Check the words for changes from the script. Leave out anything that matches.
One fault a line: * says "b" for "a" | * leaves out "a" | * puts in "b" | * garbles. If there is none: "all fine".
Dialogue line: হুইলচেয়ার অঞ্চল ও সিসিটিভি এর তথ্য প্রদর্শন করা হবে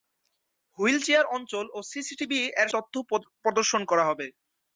all fine